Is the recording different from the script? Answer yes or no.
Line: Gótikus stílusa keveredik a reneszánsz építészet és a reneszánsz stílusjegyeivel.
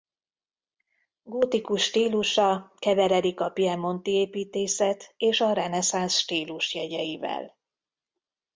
yes